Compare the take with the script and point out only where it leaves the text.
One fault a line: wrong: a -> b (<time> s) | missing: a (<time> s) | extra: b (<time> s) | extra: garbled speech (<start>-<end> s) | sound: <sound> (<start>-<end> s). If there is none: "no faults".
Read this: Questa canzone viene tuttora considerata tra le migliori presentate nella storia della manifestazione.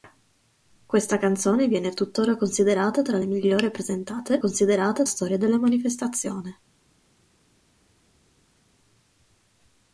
wrong: nella -> considerata (4.4 s)